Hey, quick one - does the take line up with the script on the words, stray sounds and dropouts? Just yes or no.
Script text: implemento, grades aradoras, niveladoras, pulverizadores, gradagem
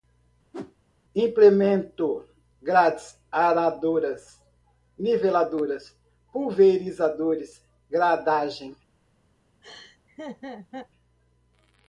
no